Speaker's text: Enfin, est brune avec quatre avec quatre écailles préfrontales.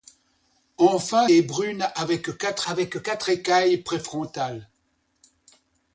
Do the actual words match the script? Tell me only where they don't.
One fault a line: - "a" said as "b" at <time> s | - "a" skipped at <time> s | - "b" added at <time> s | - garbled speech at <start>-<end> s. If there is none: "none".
none